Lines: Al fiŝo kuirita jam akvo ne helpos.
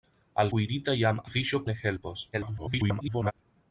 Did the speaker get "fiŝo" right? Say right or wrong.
wrong